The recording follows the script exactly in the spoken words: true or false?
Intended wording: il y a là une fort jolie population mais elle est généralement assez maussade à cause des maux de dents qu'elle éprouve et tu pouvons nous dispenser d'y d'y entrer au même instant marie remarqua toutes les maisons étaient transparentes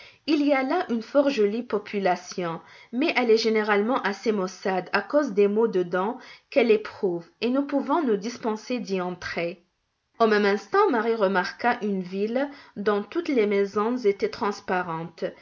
false